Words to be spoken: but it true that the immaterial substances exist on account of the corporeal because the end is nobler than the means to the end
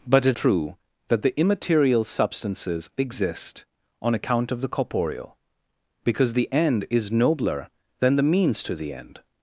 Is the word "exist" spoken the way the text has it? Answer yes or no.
yes